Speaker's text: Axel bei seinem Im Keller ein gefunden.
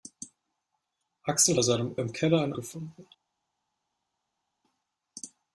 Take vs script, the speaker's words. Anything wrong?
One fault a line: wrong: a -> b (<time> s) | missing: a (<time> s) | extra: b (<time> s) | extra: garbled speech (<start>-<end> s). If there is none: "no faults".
no faults